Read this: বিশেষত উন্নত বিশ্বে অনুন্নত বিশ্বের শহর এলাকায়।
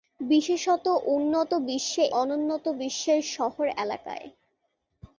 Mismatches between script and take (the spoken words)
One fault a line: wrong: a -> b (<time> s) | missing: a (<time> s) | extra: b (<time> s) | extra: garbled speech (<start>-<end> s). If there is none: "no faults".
no faults